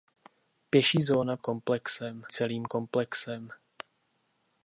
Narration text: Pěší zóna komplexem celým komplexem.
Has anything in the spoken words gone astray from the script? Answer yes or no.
no